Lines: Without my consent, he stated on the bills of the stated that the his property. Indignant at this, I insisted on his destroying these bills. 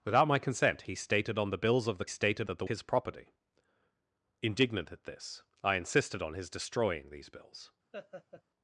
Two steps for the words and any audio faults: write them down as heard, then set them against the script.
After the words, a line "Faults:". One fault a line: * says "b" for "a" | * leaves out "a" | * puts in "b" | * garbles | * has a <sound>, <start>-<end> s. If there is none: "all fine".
Without my consent, he stated on the bills of the stated that the his property. Indignant at this, I insisted on his destroying these bills.
Faults:
* has a laugh, 7.9-8.4 s